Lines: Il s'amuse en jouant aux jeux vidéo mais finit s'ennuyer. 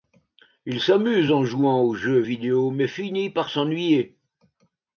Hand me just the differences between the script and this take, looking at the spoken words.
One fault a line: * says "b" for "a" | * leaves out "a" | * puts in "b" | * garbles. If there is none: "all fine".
* puts in "par"